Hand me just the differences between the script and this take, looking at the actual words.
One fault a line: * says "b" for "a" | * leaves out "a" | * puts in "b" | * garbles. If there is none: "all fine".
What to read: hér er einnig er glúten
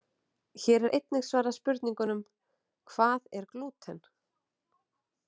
* puts in "svarað spurningunum hvað"